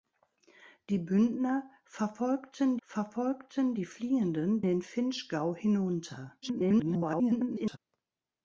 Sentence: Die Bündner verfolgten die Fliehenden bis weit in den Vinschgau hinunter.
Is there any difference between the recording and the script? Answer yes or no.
yes